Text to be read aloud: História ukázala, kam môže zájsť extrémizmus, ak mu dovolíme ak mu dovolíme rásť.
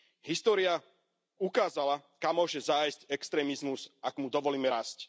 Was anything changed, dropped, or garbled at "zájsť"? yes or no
no